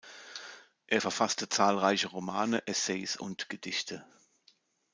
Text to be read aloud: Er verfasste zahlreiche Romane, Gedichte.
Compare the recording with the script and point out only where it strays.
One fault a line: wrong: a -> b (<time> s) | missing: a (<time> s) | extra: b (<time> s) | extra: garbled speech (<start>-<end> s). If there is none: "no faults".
extra: Essays und (2.7 s)